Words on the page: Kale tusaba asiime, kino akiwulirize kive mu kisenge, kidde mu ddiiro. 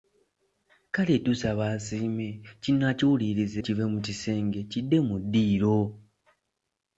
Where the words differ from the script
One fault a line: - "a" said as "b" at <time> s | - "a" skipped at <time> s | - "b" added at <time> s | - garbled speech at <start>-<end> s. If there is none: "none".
none